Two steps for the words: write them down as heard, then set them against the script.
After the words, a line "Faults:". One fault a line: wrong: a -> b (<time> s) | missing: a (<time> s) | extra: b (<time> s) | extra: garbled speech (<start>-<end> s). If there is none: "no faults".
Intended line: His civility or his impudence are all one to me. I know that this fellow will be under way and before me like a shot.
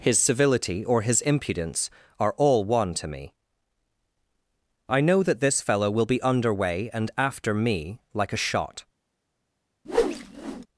His civility or his impudence are all one to me. I know that this fellow will be under way and after me like a shot.
Faults:
wrong: before -> after (7.2 s)